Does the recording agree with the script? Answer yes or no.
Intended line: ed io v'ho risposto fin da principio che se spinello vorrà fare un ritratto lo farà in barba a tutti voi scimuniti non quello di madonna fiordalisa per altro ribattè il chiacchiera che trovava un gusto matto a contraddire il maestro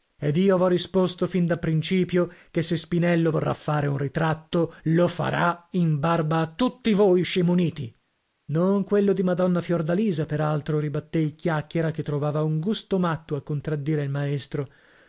yes